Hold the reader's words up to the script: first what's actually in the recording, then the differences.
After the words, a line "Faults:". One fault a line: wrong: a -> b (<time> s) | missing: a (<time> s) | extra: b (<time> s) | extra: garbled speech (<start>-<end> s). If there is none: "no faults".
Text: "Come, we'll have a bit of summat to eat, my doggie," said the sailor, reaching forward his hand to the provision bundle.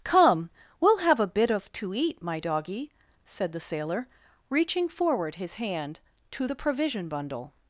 "Come, we'll have a bit of to eat, my doggie," said the sailor, reaching forward his hand to the provision bundle.
Faults:
missing: summat (1.7 s)